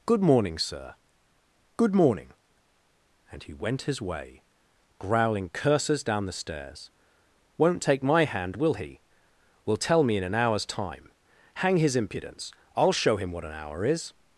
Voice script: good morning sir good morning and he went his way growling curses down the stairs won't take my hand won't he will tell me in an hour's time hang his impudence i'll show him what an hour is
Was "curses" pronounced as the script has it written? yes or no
yes